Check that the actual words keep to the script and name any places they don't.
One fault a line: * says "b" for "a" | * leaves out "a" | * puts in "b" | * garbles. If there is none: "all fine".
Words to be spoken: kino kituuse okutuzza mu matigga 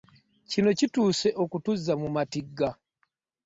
all fine